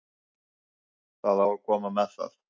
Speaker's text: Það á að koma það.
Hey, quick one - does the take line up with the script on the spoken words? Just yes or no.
no